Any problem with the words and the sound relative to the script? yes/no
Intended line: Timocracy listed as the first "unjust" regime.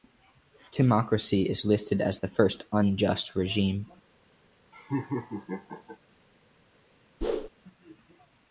yes